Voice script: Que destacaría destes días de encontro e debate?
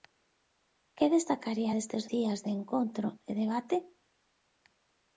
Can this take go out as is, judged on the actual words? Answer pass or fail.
pass